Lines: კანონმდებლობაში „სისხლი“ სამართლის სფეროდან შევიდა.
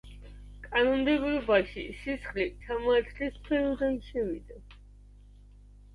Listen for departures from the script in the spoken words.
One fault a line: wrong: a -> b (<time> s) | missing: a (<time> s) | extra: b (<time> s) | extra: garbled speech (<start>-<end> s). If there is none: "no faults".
no faults